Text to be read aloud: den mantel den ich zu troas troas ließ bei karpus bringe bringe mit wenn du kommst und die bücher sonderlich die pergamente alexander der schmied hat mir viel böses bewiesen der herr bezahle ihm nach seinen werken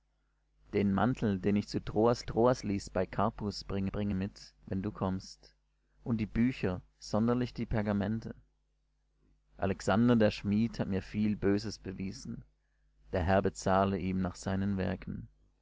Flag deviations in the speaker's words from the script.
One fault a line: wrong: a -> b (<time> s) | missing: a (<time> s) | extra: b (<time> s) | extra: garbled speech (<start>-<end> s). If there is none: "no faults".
no faults